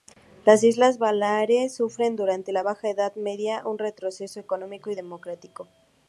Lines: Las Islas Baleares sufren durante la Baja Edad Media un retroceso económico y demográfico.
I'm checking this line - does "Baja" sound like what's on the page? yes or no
yes